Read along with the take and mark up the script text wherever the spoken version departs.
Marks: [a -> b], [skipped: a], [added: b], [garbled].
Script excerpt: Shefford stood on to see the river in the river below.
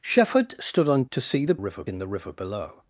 Shefford stood on to see the river in the river below.